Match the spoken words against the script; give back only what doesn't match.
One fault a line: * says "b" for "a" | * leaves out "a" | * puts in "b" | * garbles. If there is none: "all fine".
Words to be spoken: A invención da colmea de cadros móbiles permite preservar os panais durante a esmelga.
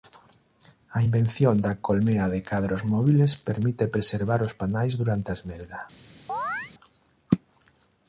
all fine